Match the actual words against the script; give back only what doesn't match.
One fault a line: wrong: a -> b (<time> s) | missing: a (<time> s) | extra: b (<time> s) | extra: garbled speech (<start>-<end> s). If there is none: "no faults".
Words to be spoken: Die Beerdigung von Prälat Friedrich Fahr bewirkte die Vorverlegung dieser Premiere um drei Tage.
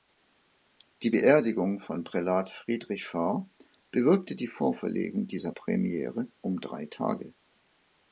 no faults